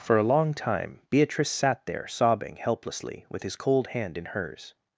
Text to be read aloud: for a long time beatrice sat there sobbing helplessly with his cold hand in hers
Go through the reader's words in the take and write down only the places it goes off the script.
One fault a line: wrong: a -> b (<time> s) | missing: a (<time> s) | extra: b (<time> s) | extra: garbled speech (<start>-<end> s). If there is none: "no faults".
no faults